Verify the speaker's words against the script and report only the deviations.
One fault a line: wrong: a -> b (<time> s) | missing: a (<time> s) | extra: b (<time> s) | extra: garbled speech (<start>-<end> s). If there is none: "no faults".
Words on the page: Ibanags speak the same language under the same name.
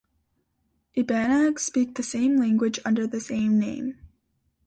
no faults